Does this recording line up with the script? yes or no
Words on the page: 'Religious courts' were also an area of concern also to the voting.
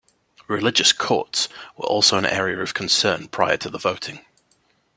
no